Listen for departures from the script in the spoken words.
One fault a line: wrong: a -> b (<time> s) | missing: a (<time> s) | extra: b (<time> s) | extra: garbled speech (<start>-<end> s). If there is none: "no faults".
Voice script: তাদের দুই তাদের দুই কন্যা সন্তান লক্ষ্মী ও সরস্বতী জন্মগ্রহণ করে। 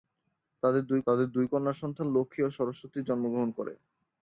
no faults